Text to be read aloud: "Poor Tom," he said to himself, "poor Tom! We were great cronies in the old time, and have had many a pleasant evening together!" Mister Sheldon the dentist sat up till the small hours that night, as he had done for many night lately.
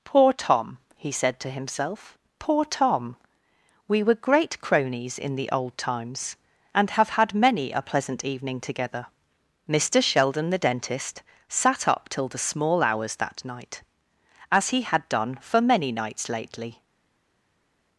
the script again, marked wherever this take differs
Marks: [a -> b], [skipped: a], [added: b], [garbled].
"Poor Tom," he said to himself, "poor Tom! We were great cronies in the old [time, -> times] and have had many a pleasant evening together!" Mister Sheldon the dentist sat up till the small hours that night, as he had done for many [night -> nights] lately.